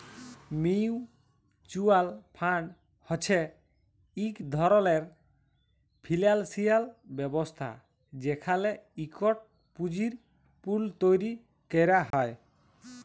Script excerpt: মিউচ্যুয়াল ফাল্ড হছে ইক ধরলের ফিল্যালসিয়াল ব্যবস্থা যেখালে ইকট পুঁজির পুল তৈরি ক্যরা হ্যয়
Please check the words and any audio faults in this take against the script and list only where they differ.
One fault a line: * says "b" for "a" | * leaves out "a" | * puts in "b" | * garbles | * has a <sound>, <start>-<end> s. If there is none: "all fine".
* has a dropout, 12.1-12.1 s